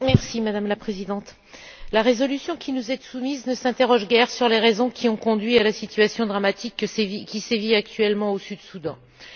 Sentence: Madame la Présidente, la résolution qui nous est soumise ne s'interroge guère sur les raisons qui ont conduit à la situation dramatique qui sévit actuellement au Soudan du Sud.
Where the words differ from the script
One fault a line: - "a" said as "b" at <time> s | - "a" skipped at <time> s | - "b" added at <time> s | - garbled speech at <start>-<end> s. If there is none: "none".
none